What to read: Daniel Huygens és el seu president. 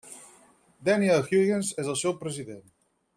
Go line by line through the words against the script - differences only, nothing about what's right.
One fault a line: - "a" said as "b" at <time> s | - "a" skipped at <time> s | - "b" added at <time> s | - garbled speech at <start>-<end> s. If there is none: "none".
none